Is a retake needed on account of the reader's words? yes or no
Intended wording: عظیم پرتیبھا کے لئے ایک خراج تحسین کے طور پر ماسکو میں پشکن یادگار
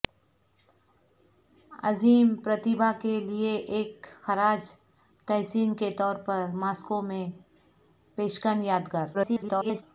yes